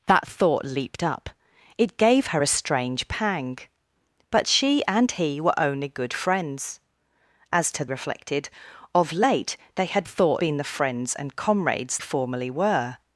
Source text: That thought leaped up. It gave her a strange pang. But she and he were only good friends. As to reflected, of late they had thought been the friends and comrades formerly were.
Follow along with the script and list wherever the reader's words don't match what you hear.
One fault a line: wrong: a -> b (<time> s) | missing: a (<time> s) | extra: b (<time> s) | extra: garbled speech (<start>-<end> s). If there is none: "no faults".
no faults